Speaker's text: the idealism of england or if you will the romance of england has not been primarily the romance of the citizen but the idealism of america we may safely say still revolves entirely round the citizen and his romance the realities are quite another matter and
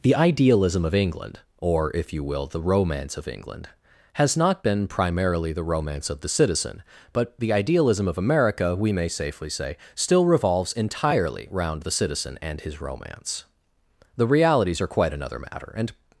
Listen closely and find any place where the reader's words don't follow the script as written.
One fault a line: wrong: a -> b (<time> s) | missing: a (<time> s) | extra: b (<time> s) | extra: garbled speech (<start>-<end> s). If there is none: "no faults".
no faults